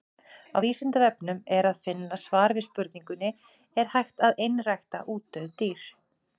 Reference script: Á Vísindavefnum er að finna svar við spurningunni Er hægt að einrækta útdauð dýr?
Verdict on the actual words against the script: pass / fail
pass